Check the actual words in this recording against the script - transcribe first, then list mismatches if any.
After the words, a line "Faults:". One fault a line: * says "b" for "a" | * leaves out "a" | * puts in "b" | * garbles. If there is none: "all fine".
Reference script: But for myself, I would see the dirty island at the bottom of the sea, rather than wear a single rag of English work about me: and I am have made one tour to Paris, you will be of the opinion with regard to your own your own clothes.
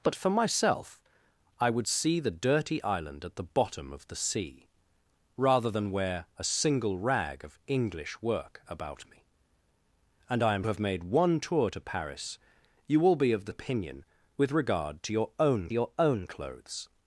But for myself, I would see the dirty island at the bottom of the sea, rather than wear a single rag of English work about me: and I am have made one tour to Paris, you will be of the opinion with regard to your own your own clothes.
Faults:
all fine